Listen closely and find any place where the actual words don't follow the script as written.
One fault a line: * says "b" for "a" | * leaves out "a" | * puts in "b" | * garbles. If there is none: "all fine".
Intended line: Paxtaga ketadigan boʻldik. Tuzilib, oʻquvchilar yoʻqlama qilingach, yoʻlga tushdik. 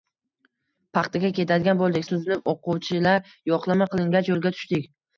all fine